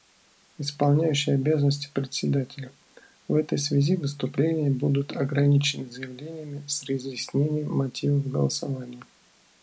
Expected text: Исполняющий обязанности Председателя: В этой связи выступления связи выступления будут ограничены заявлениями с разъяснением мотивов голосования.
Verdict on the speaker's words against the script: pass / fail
fail